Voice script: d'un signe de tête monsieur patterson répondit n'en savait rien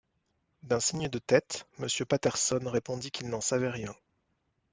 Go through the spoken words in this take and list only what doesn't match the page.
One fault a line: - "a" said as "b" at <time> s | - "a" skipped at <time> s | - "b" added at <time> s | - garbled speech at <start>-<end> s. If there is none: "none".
- "qu'il" added at 3.1 s